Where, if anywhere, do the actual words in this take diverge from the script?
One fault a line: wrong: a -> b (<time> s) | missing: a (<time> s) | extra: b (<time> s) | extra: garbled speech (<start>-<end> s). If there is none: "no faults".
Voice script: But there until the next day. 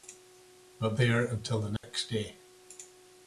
no faults